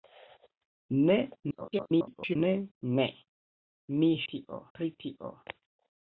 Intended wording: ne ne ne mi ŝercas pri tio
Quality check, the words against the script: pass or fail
fail